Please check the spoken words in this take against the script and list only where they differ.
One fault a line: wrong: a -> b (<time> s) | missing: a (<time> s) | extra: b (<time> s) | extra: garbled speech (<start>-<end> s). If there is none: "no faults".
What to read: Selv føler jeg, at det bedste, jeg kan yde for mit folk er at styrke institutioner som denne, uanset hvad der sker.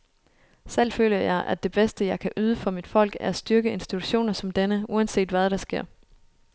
no faults